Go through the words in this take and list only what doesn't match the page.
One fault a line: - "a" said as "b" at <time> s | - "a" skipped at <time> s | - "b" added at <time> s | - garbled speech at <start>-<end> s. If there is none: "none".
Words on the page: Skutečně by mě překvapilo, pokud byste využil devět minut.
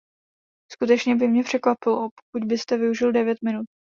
none